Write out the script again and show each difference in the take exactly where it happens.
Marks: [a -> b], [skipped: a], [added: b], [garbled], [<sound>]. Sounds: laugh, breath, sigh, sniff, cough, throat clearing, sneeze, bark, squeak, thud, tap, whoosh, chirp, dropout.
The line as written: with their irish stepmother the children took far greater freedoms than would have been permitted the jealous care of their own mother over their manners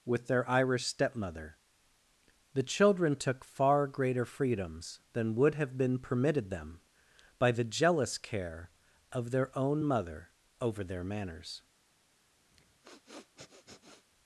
with their irish stepmother the children took far greater freedoms than would have been permitted [added: them by] the jealous care of their own mother over their manners [sniff]